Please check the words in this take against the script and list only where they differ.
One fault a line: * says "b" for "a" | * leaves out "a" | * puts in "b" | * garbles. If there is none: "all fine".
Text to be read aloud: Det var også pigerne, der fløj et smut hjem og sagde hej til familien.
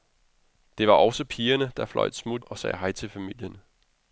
* leaves out "hjem"